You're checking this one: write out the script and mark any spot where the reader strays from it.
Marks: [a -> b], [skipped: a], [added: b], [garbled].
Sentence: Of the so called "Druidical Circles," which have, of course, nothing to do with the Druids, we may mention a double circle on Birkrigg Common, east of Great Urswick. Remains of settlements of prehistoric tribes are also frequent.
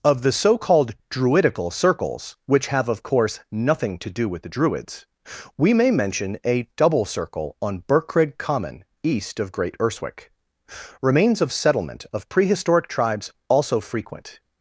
Of the so called "Druidical Circles," which have, of course, nothing to do with the Druids, we may mention a double circle on Birkrigg Common, east of Great Urswick. Remains of [settlements -> settlement] of prehistoric tribes [skipped: are] also frequent.